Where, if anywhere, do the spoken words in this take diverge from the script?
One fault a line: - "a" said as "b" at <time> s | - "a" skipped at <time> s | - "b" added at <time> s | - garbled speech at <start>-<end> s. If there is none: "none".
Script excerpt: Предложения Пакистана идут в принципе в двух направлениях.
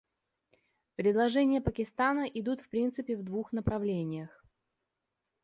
none